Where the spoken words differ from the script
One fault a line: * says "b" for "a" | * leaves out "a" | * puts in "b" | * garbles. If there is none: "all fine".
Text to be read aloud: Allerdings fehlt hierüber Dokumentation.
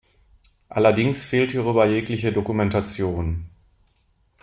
* puts in "jegliche"